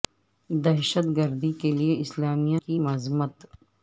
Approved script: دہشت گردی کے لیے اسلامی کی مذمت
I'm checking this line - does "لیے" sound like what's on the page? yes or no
yes